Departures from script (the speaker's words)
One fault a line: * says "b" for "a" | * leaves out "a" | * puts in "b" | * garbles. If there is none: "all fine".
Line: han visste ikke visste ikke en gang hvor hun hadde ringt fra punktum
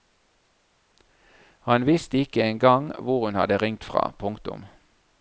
* leaves out "visste ikke"